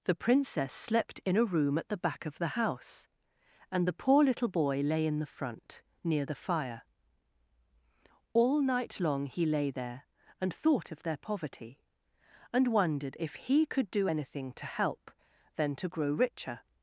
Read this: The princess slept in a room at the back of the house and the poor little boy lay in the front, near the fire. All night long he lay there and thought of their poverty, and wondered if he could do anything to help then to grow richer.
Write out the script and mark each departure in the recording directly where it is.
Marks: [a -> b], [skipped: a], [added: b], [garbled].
The princess slept in a room at the back of the house and the poor little boy lay in the front, near the fire. All night long he lay there and thought of their poverty, and wondered if he could do anything to help then to grow richer.